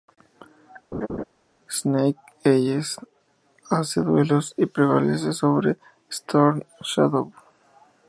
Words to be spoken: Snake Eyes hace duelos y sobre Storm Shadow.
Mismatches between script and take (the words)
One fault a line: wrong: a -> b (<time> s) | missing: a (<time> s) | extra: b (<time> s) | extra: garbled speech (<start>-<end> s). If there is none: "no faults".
extra: prevalece (4.6 s)